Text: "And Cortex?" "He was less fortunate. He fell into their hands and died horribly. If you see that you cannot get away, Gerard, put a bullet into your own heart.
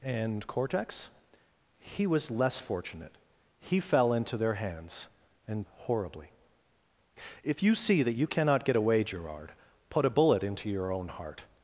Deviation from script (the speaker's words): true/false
true